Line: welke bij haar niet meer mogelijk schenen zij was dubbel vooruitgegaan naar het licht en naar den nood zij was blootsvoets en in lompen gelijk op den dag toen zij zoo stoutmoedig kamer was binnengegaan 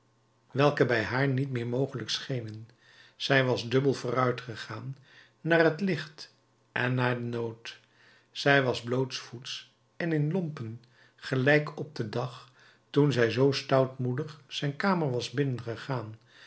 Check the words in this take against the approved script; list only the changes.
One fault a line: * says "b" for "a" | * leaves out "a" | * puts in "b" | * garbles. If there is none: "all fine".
* puts in "zijn"